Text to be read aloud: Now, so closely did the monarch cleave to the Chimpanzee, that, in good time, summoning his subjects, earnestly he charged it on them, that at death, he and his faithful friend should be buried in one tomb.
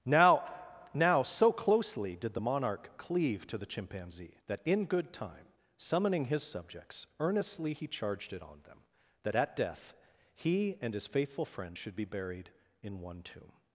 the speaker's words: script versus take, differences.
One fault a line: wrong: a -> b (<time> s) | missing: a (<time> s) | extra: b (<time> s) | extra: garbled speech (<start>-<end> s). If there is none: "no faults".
extra: now (0.9 s)